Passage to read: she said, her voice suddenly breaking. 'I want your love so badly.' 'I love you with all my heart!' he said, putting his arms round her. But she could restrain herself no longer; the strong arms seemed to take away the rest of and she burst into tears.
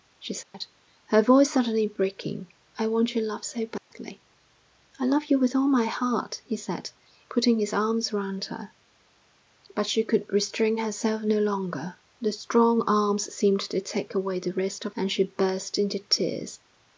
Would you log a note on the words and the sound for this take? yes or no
yes